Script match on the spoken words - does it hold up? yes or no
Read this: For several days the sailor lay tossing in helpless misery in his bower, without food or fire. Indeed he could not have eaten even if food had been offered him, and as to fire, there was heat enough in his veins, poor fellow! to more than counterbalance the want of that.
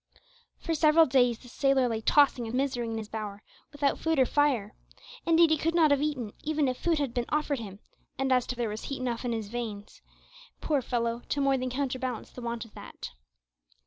no